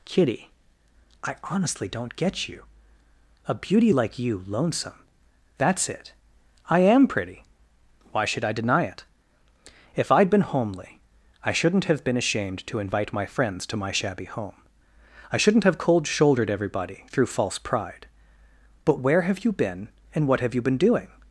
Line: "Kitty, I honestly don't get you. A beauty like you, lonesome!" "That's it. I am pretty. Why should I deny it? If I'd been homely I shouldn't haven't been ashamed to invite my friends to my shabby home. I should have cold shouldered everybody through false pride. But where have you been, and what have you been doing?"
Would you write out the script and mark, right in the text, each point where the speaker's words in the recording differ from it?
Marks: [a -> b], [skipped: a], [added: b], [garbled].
"Kitty, I honestly don't get you. A beauty like you, lonesome!" "That's it. I am pretty. Why should I deny it? If I'd been homely I shouldn't [haven't -> have] been ashamed to invite my friends to my shabby home. I [should -> shouldn't] have cold shouldered everybody through false pride. But where have you been, and what have you been doing?"